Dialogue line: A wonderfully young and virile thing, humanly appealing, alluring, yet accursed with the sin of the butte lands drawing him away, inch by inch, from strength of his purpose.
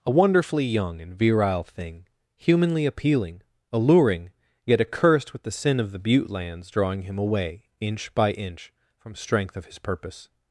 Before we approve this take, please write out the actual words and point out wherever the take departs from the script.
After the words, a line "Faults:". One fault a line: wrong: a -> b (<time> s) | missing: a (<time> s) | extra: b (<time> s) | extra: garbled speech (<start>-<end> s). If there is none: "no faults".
A wonderfully young and virile thing, humanly appealing, alluring, yet accursed with the sin of the butte lands drawing him away, inch by inch, from strength of his purpose.
Faults:
no faults